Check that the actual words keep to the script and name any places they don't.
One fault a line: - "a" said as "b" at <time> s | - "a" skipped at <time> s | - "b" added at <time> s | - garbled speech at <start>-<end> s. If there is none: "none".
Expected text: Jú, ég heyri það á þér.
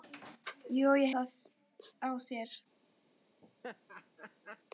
- "heyri" skipped at 1.1 s